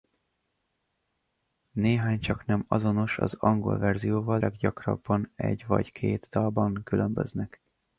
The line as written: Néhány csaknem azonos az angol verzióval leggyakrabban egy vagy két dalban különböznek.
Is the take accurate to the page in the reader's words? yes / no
yes